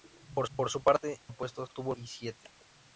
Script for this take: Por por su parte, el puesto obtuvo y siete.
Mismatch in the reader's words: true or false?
false